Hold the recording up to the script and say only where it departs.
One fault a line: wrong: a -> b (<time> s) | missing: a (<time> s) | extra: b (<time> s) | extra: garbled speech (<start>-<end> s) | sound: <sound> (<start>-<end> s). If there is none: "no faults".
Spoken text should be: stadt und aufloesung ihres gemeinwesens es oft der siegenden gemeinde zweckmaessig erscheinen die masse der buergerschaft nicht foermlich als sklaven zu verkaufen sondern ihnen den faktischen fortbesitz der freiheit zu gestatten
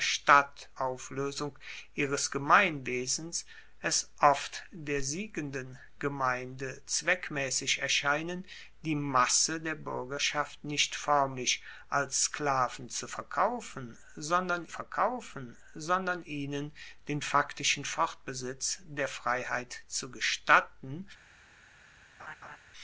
missing: und (0.7 s)
extra: verkaufen sondern (14.7 s)
sound: laugh (22.2-22.6 s)